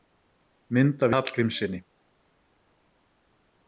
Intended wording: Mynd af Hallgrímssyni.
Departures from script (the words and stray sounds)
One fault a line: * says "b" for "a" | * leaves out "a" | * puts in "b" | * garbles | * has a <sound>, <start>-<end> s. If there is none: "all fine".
all fine